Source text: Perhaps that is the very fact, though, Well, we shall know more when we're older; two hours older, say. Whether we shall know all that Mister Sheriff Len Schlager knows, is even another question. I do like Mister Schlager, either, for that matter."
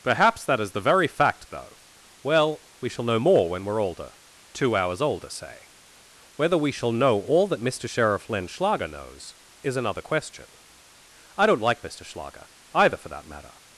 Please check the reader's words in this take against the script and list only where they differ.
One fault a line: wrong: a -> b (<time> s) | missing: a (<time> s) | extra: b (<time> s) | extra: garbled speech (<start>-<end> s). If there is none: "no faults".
missing: even (9.8 s)
wrong: do -> don't (11.5 s)